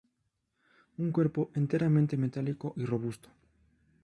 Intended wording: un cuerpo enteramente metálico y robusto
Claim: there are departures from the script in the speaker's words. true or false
false